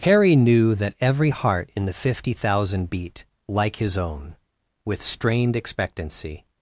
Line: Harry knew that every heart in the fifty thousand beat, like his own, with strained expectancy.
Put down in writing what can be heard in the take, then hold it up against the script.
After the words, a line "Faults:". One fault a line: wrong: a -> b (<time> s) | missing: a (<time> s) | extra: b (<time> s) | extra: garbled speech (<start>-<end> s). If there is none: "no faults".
Harry knew that every heart in the fifty thousand beat, like his own, with strained expectancy.
Faults:
no faults